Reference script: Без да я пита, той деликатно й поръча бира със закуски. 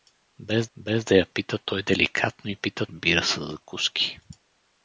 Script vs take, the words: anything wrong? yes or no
yes